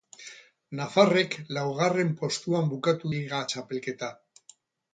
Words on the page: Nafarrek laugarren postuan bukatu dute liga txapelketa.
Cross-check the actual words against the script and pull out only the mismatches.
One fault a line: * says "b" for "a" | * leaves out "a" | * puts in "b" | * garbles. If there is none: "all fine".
* leaves out "dute"